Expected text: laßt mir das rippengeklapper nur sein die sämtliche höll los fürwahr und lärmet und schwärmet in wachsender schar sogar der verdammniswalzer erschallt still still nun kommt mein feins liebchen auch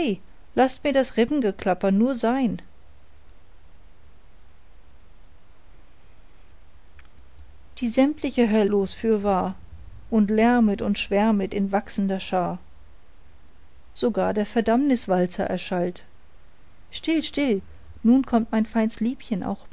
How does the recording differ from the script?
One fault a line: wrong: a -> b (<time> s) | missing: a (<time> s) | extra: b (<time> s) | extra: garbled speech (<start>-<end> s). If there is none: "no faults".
no faults